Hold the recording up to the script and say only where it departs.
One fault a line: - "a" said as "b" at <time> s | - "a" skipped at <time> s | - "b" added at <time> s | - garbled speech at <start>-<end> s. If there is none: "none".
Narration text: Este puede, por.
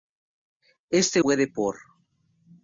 none